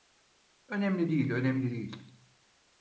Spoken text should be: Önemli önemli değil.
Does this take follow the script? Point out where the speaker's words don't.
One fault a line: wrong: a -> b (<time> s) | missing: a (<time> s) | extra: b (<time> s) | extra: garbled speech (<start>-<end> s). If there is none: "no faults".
extra: değil (1.1 s)